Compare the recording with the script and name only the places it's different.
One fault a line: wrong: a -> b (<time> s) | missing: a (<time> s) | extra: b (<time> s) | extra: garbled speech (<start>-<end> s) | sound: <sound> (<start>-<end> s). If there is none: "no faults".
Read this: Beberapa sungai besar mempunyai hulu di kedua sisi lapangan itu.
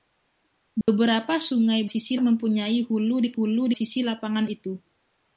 sound: dropout (0.8-0.9 s)
wrong: besar -> sisi (1.8 s)
wrong: kedua -> hulu (3.3 s)